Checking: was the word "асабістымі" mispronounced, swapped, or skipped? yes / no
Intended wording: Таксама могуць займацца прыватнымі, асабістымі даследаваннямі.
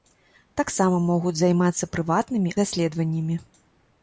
yes